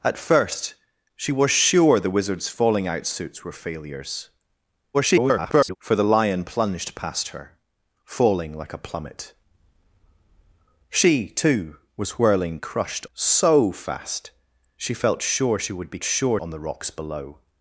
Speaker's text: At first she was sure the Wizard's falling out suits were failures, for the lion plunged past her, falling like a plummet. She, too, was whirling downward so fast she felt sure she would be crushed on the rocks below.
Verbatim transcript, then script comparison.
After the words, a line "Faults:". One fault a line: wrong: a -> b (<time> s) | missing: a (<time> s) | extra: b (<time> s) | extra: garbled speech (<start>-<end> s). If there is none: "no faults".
At first she was sure the Wizard's falling out suits were failures, [garbled] for the lion plunged past her, falling like a plummet. She, too, was whirling crushed so fast she felt sure she would be sure on the rocks below.
Faults:
extra: garbled speech (4.9-5.8 s)
wrong: downward -> crushed (12.6 s)
wrong: crushed -> sure (16.0 s)